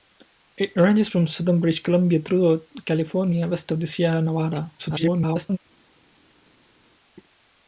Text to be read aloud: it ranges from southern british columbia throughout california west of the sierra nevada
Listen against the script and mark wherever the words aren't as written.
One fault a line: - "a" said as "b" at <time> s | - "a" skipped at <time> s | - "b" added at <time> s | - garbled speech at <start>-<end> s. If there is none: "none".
- garbled speech at 4.8-5.6 s